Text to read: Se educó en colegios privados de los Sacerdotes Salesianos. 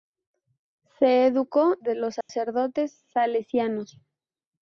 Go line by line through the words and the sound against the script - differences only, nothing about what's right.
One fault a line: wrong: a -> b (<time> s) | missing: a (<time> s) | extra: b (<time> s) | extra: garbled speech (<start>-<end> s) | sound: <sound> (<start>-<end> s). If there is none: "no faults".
missing: en colegios privados (1.8 s)
sound: dropout (2.2-2.3 s)